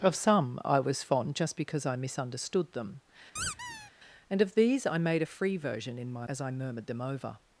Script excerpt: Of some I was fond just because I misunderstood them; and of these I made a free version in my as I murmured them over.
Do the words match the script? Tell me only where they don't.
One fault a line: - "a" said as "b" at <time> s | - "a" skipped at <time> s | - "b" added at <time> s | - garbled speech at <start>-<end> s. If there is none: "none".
none